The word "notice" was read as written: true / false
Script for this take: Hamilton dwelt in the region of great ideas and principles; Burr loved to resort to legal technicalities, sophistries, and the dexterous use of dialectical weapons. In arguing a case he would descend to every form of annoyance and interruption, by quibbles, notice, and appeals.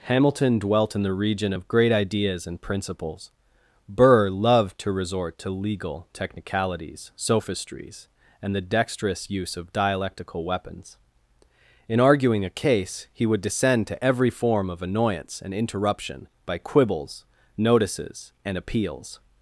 false